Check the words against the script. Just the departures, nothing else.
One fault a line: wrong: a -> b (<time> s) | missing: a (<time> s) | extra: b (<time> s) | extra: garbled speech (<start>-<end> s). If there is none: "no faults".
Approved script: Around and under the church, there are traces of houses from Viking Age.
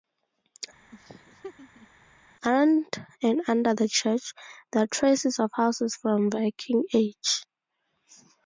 no faults